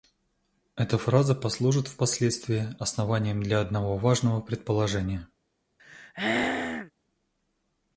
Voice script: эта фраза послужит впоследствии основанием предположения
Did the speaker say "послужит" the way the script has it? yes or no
yes